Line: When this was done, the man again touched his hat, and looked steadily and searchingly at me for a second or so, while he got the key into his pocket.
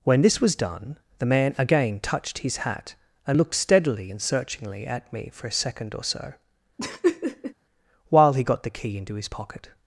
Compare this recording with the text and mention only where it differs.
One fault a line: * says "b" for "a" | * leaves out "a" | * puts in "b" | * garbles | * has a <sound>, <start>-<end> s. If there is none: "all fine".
* has a laugh, 6.8-7.5 s